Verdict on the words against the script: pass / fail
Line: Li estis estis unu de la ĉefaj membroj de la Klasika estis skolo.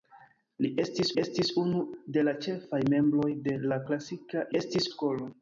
pass